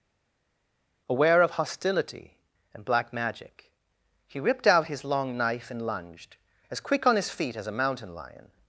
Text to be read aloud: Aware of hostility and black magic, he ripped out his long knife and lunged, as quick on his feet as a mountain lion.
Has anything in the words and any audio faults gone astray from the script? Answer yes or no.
no